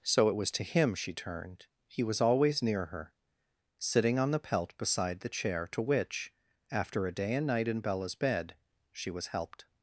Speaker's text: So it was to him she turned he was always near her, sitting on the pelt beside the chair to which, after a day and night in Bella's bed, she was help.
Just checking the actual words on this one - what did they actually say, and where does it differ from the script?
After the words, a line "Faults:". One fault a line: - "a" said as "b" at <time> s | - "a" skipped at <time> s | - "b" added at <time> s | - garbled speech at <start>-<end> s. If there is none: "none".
So it was to him she turned he was always near her, sitting on the pelt beside the chair to which, after a day and night in Bella's bed, she was helped.
Faults:
- "help" said as "helped" at 9.3 s